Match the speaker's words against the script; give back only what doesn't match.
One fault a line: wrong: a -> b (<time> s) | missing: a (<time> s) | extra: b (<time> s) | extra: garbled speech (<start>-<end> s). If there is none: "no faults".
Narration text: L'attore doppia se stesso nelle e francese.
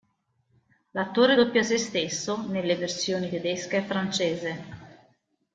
extra: versioni tedesca (2.7 s)